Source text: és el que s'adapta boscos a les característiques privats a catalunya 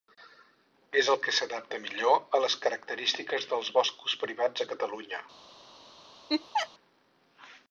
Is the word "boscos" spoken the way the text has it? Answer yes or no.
no